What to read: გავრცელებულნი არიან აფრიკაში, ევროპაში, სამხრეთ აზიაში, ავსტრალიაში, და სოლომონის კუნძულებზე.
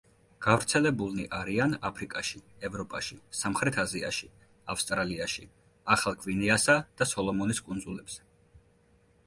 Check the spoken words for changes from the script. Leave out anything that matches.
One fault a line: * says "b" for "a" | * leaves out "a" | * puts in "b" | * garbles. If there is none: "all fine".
* puts in "ახალ გვინეასა"